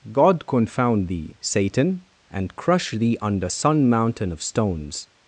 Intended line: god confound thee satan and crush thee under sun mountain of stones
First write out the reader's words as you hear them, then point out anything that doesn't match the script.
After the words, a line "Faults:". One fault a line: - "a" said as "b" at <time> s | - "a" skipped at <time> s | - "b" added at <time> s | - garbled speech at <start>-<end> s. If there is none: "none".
god confound thee satan and crush thee under sun mountain of stones
Faults:
none